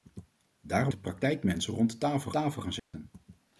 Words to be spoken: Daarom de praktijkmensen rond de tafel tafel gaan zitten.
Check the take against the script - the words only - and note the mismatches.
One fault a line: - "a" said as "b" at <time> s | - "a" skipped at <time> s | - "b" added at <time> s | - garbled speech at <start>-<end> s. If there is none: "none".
none